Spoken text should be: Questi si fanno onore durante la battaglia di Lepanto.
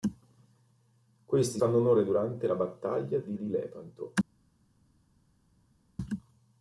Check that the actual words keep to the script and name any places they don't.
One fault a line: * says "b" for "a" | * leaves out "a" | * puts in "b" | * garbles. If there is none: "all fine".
* leaves out "si"
* puts in "di"